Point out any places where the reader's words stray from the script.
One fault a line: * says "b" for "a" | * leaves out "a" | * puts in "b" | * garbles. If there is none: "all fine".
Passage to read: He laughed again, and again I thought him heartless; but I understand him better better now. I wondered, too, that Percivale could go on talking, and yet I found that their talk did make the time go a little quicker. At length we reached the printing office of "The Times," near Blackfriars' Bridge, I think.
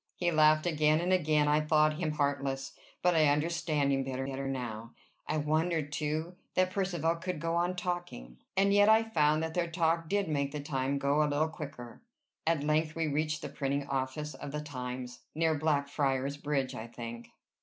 all fine